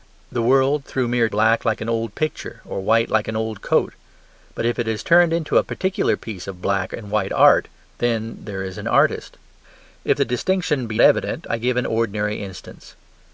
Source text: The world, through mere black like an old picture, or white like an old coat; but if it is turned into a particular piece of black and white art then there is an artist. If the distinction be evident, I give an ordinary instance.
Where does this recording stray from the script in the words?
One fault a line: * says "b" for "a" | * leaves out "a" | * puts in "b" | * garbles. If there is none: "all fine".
all fine